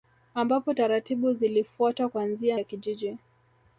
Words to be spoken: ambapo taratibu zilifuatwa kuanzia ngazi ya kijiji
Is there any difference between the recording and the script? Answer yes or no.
yes